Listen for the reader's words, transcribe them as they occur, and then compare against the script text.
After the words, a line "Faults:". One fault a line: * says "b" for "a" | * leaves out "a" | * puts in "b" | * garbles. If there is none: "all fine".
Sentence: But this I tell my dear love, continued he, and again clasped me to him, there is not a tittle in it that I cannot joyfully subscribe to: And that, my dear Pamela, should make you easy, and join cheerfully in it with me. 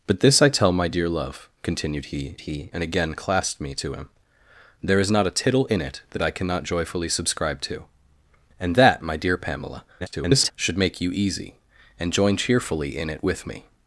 But this I tell my dear love, continued he he, and again clasped me to him, there is not a tittle in it that I cannot joyfully subscribe to: And that, my dear Pamela, [garbled] should make you easy, and join cheerfully in it with me.
Faults:
* puts in "he"
* garbles